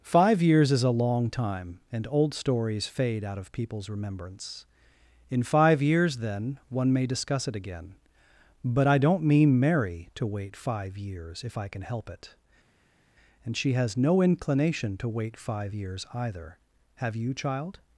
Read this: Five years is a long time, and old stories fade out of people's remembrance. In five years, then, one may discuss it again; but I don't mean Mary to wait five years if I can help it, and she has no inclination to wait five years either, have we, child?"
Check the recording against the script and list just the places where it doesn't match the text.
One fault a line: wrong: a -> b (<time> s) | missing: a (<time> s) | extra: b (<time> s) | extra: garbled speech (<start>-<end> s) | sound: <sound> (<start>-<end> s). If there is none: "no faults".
wrong: we -> you (17.2 s)